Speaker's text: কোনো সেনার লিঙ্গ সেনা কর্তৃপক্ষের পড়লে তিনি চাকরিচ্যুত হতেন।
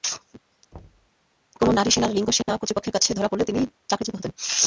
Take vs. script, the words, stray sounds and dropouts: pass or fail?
fail